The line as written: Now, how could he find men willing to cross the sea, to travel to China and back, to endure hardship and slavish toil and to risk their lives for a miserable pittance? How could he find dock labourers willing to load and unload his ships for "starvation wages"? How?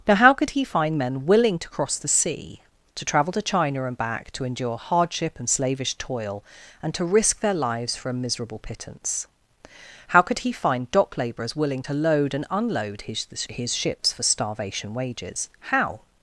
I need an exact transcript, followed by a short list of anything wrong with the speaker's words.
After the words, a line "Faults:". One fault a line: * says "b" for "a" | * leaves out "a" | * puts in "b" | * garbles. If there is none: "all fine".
Now, how could he find men willing to cross the sea, to travel to China and back, to endure hardship and slavish toil and to risk their lives for a miserable pittance? How could he find dock labourers willing to load and unload his his ships for "starvation wages"? How?
Faults:
* puts in "his"